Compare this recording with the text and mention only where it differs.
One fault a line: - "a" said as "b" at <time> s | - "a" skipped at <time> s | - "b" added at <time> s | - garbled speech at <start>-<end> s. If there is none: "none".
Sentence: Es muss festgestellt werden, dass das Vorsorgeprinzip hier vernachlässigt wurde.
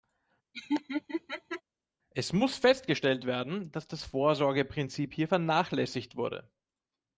none